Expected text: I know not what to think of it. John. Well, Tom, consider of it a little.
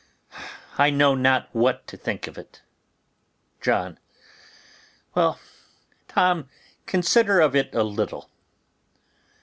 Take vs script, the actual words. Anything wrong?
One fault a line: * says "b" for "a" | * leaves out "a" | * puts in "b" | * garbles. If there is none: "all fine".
all fine